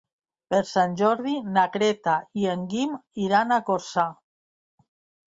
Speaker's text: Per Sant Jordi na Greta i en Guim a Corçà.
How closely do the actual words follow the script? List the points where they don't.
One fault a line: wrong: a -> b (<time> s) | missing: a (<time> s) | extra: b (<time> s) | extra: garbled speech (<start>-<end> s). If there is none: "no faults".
extra: iran (3.2 s)